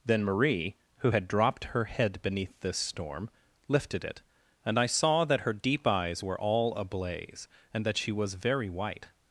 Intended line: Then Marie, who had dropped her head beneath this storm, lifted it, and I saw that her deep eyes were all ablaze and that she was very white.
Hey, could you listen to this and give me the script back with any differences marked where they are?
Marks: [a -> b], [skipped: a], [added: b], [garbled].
Then Marie, who had dropped her head beneath this storm, lifted it, and I saw that her deep eyes were all ablaze and that she was very white.